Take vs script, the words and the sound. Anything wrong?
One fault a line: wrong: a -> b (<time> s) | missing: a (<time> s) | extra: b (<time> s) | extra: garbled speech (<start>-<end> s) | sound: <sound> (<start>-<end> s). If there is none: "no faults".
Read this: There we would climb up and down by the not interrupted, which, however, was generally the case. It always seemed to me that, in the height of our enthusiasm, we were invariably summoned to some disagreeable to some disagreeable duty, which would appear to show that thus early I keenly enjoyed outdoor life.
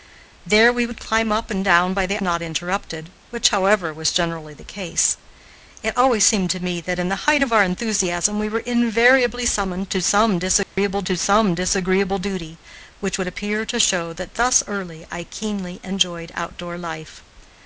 sound: dropout (10.6-10.8 s)